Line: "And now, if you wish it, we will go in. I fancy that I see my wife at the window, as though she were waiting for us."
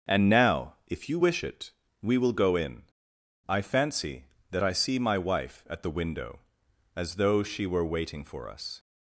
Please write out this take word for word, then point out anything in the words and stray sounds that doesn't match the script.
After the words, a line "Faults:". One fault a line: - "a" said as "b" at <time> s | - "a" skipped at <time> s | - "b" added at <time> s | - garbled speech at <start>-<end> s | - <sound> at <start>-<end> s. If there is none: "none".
"And now, if you wish it, we will go in. I fancy that I see my wife at the window, as though she were waiting for us."
Faults:
none